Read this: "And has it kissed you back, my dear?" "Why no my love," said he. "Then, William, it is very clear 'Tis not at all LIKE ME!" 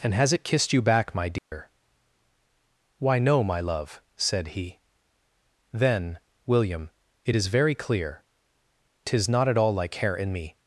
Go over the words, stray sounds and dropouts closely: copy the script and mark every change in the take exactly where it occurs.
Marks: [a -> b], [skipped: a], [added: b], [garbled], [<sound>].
"And has it kissed you back, my dear?" [dropout] "Why no my love," said he. "Then, William, it is very clear 'Tis not at all LIKE [added: hair in] ME!"